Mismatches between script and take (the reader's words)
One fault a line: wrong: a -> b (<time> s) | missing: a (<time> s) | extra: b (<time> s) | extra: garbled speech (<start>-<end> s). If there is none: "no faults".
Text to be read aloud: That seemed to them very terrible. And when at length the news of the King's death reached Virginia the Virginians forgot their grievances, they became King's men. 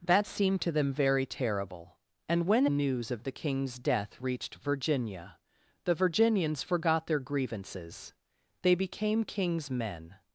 missing: at length the (2.6 s)